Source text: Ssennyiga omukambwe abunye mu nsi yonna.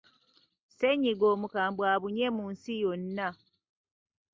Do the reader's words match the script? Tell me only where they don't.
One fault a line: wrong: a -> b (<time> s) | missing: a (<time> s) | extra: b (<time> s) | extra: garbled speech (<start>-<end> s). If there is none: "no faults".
no faults